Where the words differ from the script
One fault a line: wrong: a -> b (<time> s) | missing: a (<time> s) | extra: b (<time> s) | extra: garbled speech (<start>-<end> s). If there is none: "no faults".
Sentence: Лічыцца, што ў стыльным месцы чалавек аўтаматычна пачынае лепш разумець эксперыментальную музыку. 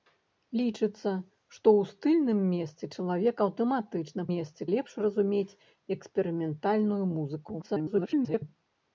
wrong: пачынае -> месцы (4.3 s)
extra: garbled speech (7.6-8.5 s)